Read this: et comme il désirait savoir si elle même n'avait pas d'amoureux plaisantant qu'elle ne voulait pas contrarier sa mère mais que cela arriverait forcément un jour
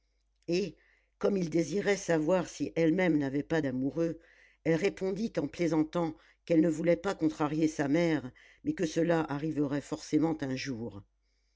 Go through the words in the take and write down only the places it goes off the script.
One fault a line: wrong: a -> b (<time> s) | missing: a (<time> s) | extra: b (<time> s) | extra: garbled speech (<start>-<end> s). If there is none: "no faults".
extra: elle répondit en (4.6 s)